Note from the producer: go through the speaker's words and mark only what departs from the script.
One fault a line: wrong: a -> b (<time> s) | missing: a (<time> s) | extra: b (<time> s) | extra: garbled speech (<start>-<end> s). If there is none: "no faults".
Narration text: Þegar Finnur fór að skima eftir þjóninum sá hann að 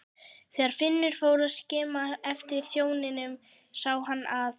no faults